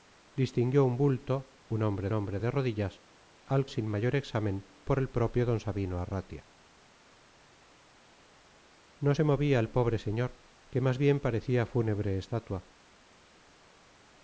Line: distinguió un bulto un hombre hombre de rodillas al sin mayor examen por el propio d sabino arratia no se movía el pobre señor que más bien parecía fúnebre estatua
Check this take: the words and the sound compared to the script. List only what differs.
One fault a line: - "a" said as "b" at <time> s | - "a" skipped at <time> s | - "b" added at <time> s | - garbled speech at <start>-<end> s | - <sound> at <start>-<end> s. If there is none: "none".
none